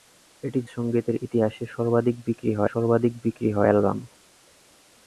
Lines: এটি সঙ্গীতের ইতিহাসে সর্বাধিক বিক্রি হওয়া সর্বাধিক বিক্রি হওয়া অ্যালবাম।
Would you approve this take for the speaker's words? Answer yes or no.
yes